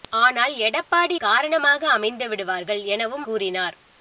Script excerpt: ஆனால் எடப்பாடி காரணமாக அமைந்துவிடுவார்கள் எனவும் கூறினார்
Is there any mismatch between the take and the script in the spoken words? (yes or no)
no